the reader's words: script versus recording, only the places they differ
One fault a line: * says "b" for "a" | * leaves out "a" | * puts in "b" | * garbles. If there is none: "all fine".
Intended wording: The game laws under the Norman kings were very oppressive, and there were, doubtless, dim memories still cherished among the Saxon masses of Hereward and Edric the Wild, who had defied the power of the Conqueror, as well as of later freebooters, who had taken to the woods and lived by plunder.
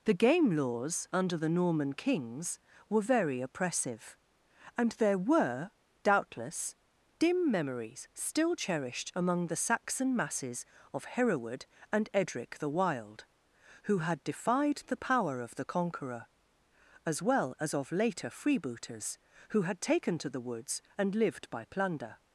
all fine